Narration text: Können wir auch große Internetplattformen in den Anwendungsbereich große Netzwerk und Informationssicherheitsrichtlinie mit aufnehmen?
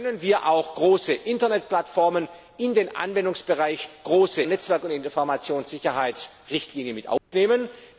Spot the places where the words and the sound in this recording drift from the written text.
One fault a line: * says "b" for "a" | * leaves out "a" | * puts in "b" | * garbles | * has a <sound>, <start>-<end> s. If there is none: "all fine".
* has a dropout, 7.2-7.3 s